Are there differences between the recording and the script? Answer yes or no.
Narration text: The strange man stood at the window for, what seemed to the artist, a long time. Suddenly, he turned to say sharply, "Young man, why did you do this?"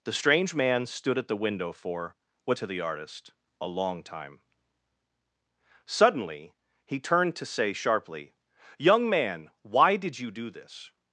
yes